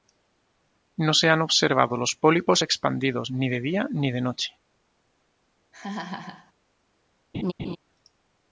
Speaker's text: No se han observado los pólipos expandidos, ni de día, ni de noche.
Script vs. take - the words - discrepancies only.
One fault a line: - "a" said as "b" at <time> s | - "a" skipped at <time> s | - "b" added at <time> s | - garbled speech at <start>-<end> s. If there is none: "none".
none